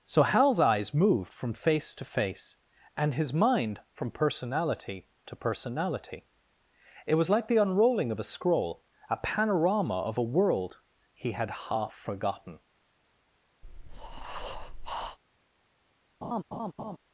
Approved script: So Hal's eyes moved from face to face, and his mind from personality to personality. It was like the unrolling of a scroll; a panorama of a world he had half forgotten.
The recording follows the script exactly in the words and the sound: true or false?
false